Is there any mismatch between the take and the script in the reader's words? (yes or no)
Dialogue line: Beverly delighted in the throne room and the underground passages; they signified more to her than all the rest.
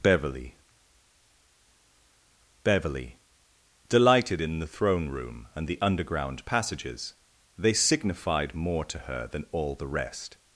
yes